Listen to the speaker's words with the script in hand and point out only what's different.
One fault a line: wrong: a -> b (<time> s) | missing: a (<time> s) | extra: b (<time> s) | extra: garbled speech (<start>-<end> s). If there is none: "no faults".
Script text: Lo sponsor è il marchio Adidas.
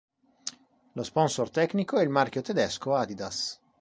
extra: tecnico (1.5 s)
extra: Tedesco (2.4 s)